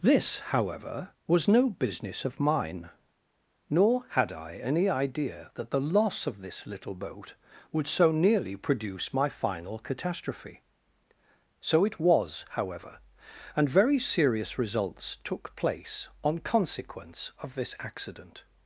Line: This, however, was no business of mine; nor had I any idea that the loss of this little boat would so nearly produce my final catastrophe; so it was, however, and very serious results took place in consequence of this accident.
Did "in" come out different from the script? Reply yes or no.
yes